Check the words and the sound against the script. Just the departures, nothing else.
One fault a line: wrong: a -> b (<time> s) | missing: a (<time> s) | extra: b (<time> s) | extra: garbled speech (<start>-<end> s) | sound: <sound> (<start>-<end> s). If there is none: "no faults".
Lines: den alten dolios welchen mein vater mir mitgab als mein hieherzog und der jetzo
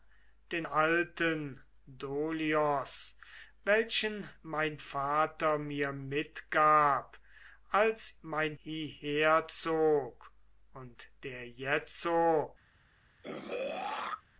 sound: throat clearing (13.2-14.2 s)